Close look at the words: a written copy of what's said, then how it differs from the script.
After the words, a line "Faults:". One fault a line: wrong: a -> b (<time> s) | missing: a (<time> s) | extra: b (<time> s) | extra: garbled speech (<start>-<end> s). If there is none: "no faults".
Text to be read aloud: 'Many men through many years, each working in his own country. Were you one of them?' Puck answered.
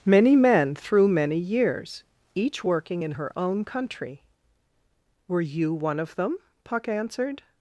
'Many men through many years, each working in her own country. Were you one of them?' Puck answered.
Faults:
wrong: his -> her (3.1 s)